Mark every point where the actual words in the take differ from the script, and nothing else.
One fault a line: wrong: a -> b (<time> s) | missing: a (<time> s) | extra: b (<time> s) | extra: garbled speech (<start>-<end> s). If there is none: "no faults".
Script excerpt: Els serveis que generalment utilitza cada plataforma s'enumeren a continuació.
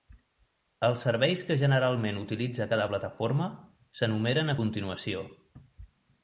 no faults